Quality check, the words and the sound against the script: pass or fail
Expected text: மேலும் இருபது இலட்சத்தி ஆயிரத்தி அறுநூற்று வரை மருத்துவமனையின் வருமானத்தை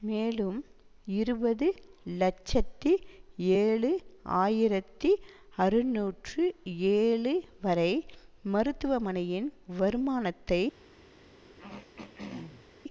fail